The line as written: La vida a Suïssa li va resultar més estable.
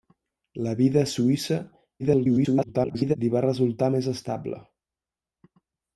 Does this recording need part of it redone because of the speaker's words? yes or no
yes